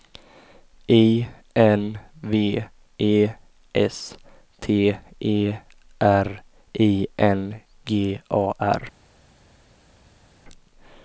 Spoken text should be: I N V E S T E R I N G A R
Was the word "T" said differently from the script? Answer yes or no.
no